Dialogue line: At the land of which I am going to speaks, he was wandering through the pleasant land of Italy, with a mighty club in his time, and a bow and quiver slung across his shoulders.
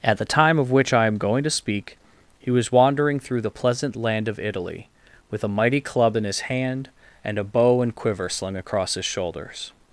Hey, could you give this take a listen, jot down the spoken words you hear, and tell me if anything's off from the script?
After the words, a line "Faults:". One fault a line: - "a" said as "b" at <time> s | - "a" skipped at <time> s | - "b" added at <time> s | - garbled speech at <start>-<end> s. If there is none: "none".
At the time of which I am going to speak, he was wandering through the pleasant land of Italy, with a mighty club in his hand, and a bow and quiver slung across his shoulders.
Faults:
- "land" said as "time" at 0.2 s
- "speaks" said as "speak" at 1.5 s
- "time" said as "hand" at 6.4 s